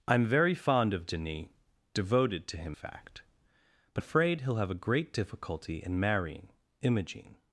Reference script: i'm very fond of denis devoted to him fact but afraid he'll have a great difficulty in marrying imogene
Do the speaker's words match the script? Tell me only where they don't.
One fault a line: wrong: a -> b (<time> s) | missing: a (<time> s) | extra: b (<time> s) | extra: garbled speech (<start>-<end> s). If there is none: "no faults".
no faults